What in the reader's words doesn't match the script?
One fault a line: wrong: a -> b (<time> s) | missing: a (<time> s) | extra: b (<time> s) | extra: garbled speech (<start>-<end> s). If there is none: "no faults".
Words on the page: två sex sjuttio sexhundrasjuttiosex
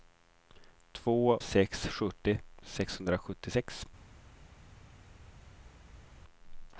no faults